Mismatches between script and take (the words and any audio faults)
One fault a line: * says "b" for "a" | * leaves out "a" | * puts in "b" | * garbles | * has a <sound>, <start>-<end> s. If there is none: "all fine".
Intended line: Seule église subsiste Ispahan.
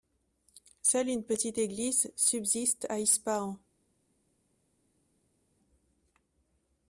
* puts in "une petite"
* puts in "à"